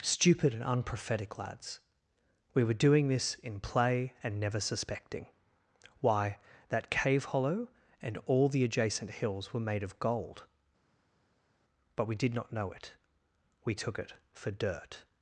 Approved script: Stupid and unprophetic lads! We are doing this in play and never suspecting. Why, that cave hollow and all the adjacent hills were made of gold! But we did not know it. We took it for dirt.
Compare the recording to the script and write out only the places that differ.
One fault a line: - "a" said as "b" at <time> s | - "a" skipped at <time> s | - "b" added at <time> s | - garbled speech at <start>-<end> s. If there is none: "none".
- "are" said as "were" at 2.6 s